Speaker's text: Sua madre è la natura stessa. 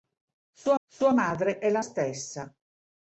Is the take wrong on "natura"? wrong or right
wrong